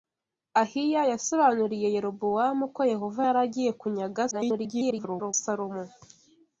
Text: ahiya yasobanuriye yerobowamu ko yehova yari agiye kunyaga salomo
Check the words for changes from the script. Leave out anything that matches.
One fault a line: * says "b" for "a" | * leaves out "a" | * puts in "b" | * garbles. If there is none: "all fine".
* garbles